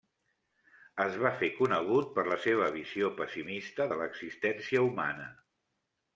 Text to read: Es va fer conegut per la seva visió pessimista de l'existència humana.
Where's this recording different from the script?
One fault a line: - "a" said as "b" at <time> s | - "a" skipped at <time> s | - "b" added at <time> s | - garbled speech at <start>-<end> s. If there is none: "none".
none